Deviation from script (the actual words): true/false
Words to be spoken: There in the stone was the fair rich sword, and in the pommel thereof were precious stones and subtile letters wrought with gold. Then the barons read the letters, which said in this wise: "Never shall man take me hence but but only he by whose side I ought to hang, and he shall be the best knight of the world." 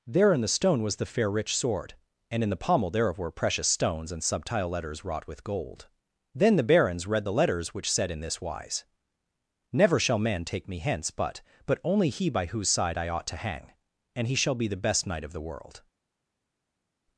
false